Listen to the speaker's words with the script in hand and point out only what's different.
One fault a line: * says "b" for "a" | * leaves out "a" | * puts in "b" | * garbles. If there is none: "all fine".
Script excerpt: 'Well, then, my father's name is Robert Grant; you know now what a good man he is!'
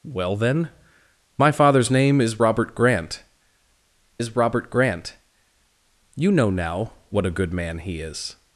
* puts in "is Robert Grant"